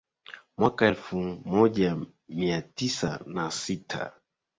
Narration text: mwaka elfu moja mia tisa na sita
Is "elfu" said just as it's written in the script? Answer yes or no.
yes